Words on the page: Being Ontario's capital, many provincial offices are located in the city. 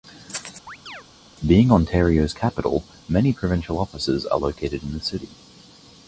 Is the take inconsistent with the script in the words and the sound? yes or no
yes